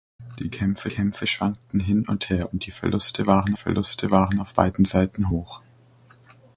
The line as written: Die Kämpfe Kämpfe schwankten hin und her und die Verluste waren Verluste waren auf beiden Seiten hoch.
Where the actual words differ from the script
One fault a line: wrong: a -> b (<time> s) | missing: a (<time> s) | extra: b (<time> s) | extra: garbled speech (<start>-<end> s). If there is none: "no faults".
no faults